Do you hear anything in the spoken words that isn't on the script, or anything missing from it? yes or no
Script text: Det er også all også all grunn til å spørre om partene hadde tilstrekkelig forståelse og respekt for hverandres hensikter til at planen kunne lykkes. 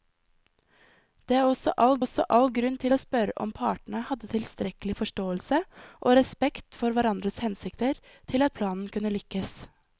no